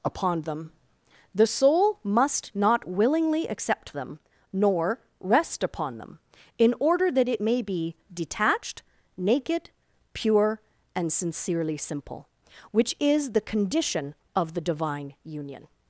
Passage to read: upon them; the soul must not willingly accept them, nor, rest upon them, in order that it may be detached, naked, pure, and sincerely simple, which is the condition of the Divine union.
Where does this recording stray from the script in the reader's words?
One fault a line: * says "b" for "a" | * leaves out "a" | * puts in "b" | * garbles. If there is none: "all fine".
all fine